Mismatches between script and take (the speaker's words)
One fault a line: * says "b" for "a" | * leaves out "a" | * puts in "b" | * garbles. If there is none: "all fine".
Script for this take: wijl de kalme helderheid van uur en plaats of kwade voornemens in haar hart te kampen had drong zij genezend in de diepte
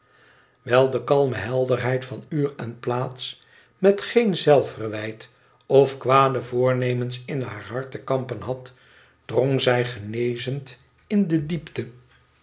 * puts in "met geen zelfverwijt"